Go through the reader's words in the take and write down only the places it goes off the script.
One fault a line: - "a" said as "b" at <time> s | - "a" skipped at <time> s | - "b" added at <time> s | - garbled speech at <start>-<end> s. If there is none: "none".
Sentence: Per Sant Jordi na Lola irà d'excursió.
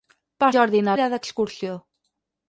- "Sant" skipped at 0.5 s
- "Lola" skipped at 1.0 s